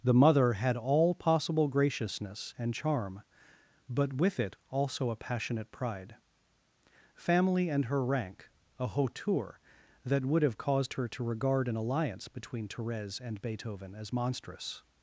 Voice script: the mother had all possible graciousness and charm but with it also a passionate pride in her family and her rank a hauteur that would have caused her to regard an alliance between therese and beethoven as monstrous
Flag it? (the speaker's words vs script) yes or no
yes